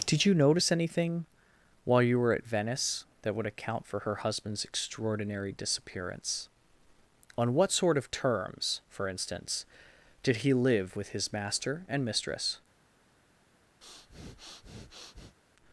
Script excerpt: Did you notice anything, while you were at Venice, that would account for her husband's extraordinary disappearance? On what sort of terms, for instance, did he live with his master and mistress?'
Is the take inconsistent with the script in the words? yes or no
no